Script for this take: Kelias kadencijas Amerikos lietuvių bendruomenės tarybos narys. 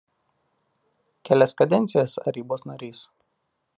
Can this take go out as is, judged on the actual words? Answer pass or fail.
fail